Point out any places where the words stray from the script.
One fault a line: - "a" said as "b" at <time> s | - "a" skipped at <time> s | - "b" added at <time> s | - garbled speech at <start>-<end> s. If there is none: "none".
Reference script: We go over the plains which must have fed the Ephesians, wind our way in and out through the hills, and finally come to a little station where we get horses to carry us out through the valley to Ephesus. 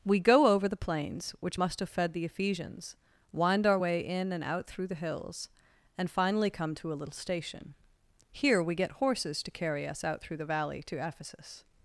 - "where" said as "here" at 8.3 s